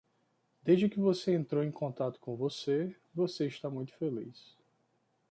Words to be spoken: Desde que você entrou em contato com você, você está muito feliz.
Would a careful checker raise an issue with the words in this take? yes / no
no